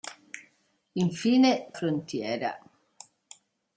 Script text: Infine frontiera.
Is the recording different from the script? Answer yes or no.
no